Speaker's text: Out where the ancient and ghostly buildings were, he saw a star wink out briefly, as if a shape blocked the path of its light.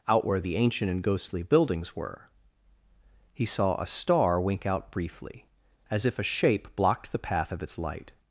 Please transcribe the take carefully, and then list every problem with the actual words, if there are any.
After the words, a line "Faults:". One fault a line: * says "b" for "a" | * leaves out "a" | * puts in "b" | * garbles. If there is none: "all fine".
Out where the ancient and ghostly buildings were, he saw a star wink out briefly, as if a shape blocked the path of its light.
Faults:
all fine